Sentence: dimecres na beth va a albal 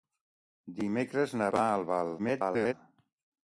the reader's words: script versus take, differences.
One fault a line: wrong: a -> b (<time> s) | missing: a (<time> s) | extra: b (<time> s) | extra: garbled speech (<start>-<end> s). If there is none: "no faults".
missing: beth (1.5 s)
extra: garbled speech (2.2-2.7 s)